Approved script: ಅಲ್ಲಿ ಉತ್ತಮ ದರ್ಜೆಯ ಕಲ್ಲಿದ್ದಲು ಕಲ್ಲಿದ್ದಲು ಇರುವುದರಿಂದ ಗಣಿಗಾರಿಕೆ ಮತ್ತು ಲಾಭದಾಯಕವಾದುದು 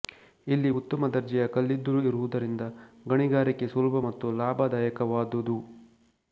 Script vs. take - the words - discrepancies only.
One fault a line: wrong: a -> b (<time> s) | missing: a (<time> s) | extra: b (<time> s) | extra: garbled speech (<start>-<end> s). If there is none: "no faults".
wrong: ಅಲ್ಲಿ -> ಇಲ್ಲಿ (0.5 s)
missing: ಕಲ್ಲಿದ್ದಲು (2.0 s)
extra: ಸುಲಭ (3.7 s)